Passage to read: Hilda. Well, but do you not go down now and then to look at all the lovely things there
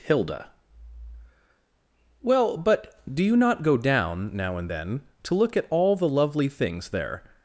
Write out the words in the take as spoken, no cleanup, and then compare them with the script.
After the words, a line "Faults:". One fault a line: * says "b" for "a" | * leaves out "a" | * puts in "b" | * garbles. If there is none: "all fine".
Hilda. Well, but do you not go down now and then to look at all the lovely things there
Faults:
all fine